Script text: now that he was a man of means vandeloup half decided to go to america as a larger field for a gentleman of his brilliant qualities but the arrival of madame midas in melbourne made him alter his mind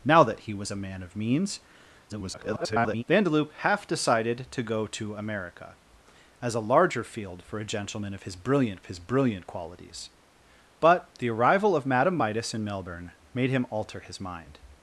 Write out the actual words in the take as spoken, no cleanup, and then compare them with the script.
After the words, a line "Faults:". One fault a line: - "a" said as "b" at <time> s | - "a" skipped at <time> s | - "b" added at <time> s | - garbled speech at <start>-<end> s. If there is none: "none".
now that he was a man of means [garbled] vandeloup half decided to go to america as a larger field for a gentleman of his brilliant his brilliant qualities but the arrival of madame midas in melbourne made him alter his mind
Faults:
- garbled speech at 2.1-3.0 s
- "his brilliant" added at 8.9 s